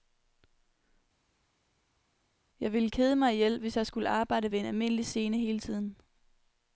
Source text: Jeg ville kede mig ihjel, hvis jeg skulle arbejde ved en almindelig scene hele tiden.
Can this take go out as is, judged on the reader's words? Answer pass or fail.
pass